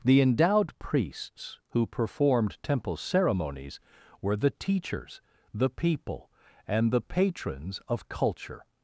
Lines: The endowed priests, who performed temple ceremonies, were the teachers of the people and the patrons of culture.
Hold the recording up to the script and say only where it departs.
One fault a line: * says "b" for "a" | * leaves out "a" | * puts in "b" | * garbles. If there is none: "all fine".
* leaves out "of"